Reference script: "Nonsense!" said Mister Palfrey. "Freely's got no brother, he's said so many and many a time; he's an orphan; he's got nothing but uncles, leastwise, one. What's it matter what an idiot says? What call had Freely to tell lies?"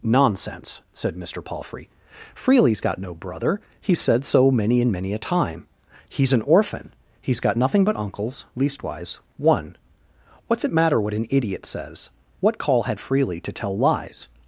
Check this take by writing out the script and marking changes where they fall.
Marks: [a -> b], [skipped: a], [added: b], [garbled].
"Nonsense!" said Mister Palfrey. "Freely's got no brother, he's said so many and many a time; he's an orphan; he's got nothing but uncles, leastwise, one. What's it matter what an idiot says? What call had Freely to tell lies?"